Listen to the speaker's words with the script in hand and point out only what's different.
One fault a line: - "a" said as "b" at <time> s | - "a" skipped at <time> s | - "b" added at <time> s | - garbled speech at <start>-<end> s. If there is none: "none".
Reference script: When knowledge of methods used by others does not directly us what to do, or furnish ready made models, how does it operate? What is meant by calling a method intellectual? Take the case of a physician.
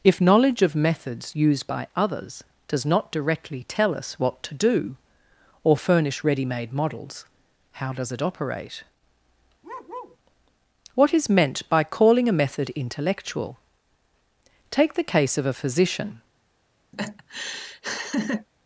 - "When" said as "If" at 0.0 s
- "tell" added at 3.7 s